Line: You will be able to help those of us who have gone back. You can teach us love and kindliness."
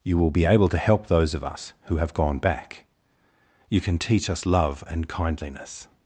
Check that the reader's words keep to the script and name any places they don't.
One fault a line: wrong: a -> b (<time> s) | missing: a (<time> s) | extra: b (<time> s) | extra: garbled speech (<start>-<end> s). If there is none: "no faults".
no faults